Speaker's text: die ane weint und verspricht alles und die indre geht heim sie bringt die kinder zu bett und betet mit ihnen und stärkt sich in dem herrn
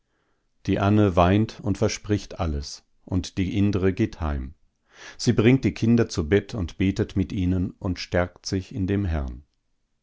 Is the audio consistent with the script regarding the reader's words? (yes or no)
yes